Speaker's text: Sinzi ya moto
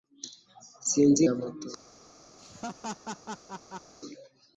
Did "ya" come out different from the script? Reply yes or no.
no